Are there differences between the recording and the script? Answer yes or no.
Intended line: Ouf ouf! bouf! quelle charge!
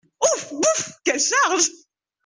yes